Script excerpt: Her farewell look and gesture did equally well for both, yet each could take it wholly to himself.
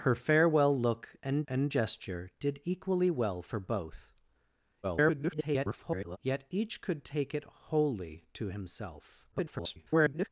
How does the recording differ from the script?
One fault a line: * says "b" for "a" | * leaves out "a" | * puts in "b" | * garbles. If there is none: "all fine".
* puts in "and"
* garbles
* garbles